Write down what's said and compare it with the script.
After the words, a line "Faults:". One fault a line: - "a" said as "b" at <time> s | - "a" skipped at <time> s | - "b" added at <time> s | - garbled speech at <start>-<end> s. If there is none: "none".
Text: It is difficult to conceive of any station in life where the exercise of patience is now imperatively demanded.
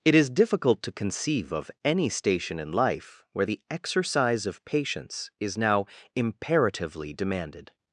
It is difficult to conceive of any station in life where the exercise of patience is now imperatively demanded.
Faults:
none